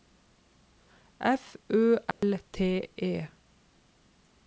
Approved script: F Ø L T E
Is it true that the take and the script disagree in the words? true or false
false